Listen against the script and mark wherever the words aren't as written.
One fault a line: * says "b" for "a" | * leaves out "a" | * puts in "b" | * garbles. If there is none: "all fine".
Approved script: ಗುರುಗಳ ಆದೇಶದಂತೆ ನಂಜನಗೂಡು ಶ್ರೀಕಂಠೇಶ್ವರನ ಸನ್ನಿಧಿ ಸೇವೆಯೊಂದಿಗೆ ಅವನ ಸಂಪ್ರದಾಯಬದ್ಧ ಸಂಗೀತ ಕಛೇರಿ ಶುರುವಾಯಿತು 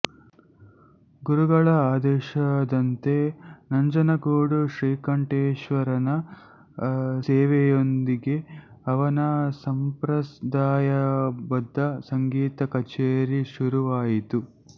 * leaves out "ಸನ್ನಿಧಿ"